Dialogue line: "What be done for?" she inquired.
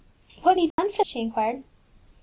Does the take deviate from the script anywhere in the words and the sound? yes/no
yes